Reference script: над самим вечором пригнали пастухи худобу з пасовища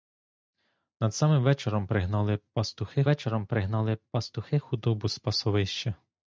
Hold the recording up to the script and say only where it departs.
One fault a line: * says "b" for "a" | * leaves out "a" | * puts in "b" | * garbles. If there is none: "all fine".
* puts in "вечором пригнали пастухи"